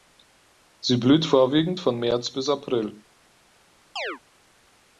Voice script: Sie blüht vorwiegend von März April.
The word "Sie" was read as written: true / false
true